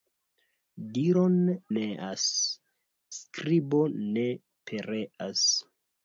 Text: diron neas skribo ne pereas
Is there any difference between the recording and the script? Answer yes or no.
no